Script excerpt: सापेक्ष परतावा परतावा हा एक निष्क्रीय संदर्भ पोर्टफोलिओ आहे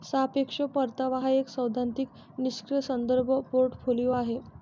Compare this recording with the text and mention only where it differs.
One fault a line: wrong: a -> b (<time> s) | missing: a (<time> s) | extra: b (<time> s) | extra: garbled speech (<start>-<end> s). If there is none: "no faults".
missing: परतावा (1.2 s)
extra: सैद्धांतिक (1.5 s)